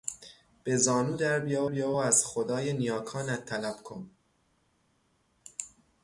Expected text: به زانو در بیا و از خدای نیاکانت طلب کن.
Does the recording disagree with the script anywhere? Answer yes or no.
yes